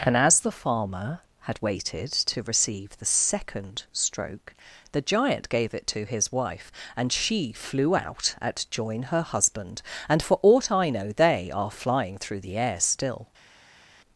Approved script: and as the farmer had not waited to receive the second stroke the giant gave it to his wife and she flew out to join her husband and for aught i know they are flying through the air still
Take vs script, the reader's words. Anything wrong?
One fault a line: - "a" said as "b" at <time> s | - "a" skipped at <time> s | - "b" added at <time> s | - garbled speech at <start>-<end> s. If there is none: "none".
- "not" skipped at 1.6 s
- "to" said as "at" at 8.4 s